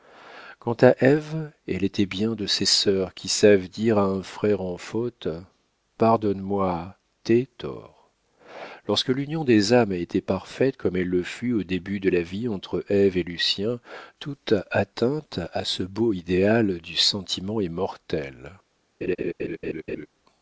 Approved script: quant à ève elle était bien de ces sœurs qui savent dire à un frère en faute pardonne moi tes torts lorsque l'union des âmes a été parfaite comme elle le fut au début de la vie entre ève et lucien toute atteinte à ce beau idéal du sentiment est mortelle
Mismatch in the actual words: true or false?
false